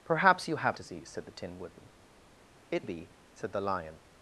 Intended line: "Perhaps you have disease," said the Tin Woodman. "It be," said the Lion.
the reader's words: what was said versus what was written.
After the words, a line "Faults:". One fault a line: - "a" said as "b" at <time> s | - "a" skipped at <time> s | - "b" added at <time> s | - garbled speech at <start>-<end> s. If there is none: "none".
"Perhaps you have disease," said the Tin Woodman. "It be," said the Lion.
Faults:
none